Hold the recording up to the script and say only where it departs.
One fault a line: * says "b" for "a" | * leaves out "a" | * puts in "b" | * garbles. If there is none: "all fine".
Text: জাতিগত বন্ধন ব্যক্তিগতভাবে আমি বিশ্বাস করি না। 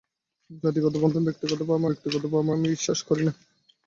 * puts in "ব্যক্তিগতভাবে"